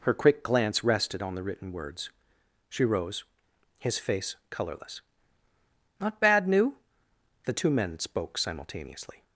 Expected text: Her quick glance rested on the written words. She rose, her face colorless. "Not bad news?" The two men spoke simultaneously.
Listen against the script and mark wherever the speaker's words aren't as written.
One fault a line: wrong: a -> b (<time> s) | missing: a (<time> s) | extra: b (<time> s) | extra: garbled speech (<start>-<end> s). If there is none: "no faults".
wrong: her -> his (3.8 s)
wrong: news -> new (6.5 s)